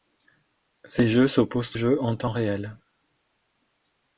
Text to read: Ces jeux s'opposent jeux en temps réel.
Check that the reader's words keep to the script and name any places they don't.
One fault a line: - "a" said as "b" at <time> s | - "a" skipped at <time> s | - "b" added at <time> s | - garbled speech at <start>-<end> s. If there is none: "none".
none